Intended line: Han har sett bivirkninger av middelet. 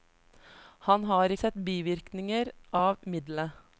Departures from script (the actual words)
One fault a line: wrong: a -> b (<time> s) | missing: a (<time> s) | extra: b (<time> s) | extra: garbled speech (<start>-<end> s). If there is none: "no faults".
no faults